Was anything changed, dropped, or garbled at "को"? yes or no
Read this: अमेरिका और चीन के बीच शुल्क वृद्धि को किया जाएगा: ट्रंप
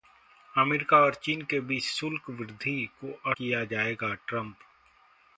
no